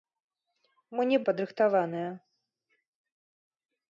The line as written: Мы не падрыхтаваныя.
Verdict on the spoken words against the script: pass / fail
pass